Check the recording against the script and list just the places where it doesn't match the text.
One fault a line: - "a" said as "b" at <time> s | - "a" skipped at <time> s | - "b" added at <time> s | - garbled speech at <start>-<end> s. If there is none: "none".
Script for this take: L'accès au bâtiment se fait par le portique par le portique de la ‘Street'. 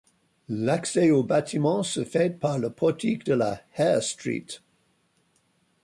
- "par le portique" skipped at 3.3 s
- "Hare" added at 3.8 s